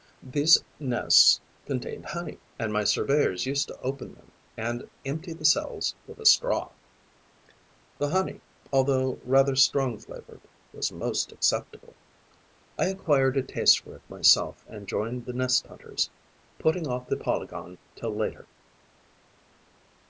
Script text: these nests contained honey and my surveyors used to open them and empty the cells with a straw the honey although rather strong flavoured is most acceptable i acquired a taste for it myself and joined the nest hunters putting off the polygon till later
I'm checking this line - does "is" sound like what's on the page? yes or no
no